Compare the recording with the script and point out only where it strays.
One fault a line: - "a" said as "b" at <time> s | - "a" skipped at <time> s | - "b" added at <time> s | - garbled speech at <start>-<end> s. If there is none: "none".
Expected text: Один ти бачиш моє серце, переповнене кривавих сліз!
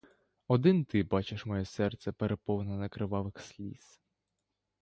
none